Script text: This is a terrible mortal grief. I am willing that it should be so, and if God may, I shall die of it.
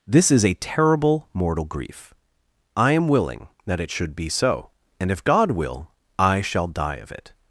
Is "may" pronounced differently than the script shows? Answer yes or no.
yes